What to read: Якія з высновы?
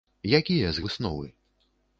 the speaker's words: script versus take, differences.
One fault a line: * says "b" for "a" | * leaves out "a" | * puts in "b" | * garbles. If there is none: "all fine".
all fine